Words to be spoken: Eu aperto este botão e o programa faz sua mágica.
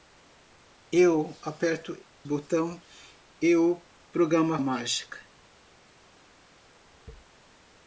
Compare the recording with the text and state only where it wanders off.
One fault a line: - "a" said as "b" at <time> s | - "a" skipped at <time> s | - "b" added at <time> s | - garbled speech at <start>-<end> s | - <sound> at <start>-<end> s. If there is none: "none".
- "este" skipped at 1.9 s
- "faz sua" skipped at 4.6 s